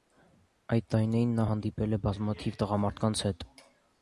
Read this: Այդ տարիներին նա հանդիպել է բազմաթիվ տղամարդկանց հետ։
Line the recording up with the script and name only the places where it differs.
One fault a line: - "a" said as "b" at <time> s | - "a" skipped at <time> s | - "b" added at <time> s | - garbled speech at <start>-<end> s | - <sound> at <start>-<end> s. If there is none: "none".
none